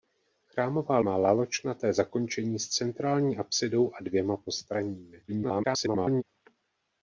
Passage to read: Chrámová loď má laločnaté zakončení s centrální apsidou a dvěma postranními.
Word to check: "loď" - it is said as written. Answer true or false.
false